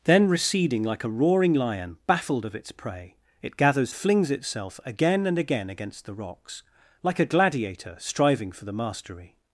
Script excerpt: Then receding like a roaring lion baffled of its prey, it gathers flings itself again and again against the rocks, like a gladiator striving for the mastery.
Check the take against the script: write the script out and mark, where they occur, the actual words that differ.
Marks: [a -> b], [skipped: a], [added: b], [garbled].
Then receding like a roaring lion baffled of its prey, it gathers flings itself again and again against the rocks, like a gladiator striving for the mastery.